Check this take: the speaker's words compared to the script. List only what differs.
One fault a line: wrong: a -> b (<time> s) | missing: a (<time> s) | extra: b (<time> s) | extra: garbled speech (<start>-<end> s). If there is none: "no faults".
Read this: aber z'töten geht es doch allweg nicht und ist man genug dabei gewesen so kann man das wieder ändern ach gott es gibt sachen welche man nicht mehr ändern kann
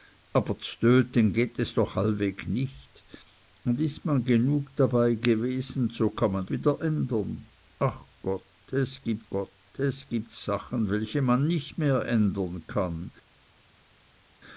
missing: das (6.5 s)
extra: gott es gibt (9.3 s)